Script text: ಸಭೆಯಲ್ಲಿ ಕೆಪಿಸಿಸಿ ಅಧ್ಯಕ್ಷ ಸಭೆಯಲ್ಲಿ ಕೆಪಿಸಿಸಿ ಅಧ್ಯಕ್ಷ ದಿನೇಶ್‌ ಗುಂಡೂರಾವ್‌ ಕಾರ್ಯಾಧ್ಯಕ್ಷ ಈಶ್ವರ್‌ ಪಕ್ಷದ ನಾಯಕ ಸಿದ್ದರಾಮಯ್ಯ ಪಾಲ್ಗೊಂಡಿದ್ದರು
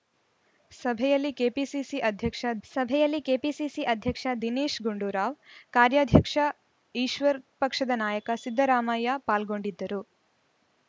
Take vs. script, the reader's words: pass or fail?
pass